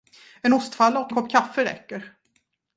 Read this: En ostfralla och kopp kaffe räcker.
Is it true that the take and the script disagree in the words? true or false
false